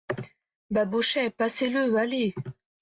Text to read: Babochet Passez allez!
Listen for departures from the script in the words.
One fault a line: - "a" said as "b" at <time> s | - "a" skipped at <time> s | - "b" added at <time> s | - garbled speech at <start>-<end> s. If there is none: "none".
- "le" added at 1.7 s